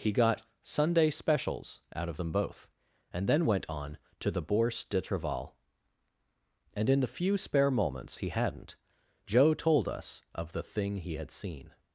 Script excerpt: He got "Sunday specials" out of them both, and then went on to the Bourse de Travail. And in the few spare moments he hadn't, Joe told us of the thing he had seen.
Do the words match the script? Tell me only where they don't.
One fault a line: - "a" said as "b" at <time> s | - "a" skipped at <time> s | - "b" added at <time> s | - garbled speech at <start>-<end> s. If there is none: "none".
none